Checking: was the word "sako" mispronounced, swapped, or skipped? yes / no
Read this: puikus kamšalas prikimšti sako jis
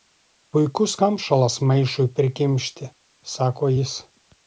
no